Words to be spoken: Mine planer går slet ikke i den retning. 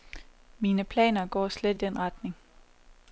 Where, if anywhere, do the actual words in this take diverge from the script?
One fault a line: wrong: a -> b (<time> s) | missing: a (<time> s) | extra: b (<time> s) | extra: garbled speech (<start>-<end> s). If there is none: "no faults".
missing: ikke (1.8 s)